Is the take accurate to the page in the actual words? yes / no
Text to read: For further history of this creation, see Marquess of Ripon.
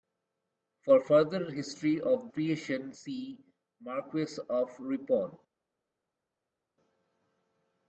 no